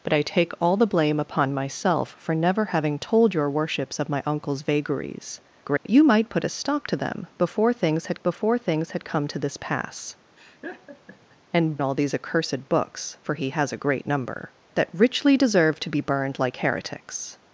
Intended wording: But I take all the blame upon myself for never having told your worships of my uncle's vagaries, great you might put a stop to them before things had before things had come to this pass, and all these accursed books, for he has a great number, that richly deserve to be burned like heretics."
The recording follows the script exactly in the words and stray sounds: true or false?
false